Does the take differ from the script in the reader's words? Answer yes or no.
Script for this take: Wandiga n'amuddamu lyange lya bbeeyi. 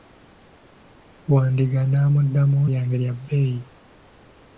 no